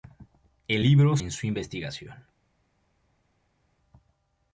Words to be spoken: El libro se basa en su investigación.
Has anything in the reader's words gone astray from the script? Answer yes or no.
yes